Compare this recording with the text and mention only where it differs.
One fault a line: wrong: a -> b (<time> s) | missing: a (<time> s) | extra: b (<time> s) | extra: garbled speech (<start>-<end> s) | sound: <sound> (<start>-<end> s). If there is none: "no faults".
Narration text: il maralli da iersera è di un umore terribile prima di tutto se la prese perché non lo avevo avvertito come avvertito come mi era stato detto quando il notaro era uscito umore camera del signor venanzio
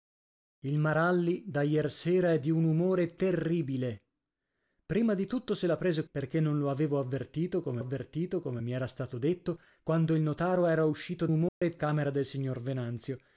sound: dropout (11.5-11.6 s)